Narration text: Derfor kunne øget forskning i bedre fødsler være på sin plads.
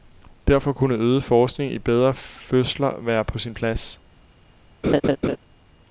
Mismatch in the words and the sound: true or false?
true